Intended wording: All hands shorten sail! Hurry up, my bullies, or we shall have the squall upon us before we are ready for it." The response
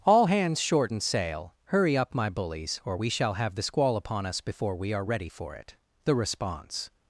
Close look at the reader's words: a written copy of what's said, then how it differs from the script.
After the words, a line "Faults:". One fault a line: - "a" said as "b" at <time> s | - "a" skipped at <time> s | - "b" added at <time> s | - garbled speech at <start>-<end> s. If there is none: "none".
All hands shorten sail! Hurry up, my bullies, or we shall have the squall upon us before we are ready for it." The response
Faults:
none